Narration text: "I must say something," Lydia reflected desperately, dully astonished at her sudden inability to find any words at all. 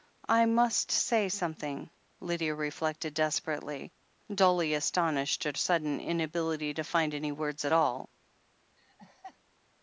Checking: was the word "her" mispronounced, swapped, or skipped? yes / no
yes